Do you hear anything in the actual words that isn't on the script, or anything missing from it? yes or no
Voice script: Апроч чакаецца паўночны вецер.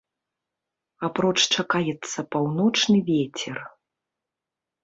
no